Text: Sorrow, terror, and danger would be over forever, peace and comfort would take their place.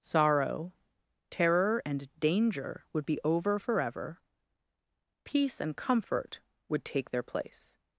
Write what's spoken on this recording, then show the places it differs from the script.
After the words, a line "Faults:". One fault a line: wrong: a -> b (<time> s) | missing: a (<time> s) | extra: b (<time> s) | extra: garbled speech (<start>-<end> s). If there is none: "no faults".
Sorrow, terror, and danger would be over forever, peace and comfort would take their place.
Faults:
no faults